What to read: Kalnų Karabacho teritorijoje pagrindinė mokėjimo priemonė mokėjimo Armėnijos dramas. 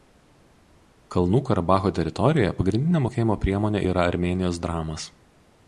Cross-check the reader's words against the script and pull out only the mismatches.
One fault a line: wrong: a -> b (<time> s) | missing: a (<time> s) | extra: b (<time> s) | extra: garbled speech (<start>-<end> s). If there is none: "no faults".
wrong: mokėjimo -> yra (3.9 s)